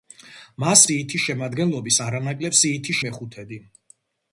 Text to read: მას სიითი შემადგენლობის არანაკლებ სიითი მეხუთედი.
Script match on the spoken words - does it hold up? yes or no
yes